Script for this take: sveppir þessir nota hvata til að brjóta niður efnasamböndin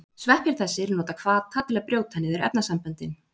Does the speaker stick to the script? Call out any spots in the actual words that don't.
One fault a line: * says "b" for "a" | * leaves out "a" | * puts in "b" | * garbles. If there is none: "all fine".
all fine